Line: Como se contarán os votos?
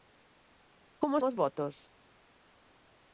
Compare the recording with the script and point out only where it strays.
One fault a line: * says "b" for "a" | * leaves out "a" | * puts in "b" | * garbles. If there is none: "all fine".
* leaves out "se contarán"